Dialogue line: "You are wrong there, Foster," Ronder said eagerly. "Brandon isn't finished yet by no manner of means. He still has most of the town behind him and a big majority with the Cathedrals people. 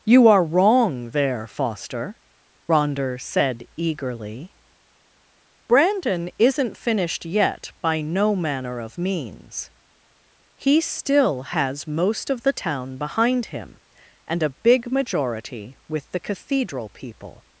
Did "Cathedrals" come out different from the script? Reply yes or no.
yes